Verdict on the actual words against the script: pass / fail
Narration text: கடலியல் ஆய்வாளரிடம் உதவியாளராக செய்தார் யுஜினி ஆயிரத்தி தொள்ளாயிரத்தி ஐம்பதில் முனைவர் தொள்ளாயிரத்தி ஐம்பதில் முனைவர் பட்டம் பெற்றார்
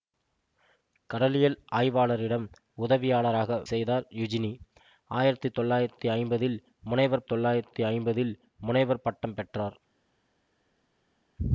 pass